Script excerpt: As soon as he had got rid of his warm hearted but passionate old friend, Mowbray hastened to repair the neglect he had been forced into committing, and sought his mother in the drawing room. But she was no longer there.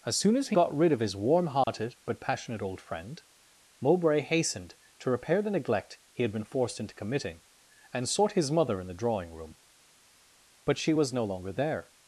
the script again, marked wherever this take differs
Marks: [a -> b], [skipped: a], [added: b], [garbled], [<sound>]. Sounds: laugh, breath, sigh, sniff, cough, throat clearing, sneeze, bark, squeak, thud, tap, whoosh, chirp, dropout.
As soon as he [skipped: had] got rid of his warm hearted [dropout] but passionate old friend, Mowbray hastened to repair the neglect he had been forced into committing, and sought his mother in the drawing room. But she was no longer there.